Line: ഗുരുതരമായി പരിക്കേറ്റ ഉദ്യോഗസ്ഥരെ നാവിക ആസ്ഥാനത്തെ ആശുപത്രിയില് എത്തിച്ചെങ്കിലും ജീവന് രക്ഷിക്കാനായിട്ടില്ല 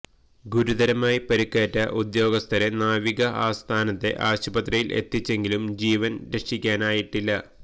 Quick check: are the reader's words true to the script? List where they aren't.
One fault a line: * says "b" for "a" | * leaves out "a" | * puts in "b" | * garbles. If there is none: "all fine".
all fine